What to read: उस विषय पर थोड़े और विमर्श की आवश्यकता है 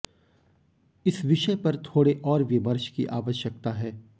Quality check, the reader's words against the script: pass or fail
fail